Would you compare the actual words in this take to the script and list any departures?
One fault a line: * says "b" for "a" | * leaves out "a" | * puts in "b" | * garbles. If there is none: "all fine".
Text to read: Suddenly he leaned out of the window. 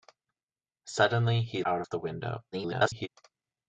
* leaves out "leaned"
* garbles